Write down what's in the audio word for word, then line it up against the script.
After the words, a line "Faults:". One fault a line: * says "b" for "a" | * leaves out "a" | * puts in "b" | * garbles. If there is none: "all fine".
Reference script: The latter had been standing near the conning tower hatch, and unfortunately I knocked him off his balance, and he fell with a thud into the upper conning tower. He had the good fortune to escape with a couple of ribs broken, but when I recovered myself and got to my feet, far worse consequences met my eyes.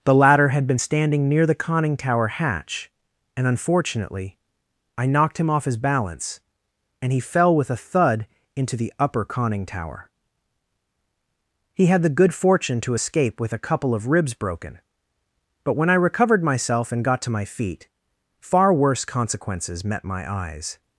The latter had been standing near the conning tower hatch, and unfortunately I knocked him off his balance, and he fell with a thud into the upper conning tower. He had the good fortune to escape with a couple of ribs broken, but when I recovered myself and got to my feet, far worse consequences met my eyes.
Faults:
all fine